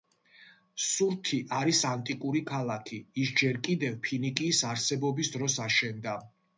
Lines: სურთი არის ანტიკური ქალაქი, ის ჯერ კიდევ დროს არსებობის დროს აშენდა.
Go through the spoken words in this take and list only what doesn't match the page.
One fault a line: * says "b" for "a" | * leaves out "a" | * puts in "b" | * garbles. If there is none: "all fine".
* says "ფინიკიის" for "დროს"